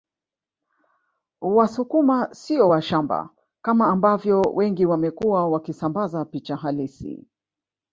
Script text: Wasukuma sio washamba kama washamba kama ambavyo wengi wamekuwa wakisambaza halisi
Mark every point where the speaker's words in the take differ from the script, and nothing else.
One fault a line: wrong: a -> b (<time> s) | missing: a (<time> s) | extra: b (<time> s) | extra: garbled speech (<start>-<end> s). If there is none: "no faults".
missing: washamba kama (3.9 s)
extra: picha (6.2 s)